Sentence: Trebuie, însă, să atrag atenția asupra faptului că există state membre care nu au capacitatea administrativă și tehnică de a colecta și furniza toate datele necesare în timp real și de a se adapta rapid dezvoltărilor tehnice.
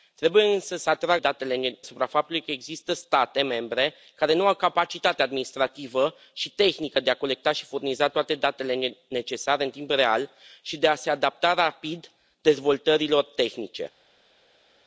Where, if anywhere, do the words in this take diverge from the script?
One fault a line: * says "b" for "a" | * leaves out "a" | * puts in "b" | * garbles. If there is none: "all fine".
* says "datele" for "atenția"